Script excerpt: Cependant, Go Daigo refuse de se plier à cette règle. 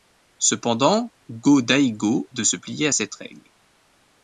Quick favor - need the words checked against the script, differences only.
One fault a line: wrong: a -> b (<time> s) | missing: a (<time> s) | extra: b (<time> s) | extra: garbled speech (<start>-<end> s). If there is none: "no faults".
missing: refuse (2.3 s)